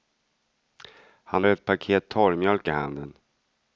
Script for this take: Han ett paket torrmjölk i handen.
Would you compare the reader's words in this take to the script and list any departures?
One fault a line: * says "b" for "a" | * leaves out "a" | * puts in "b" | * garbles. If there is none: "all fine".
all fine